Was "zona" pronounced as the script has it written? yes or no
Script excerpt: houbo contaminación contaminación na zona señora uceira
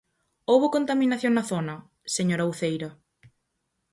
yes